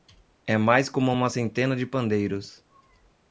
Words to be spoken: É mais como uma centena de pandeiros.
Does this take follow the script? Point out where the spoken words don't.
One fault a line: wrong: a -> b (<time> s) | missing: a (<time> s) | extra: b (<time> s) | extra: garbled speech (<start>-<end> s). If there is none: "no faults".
no faults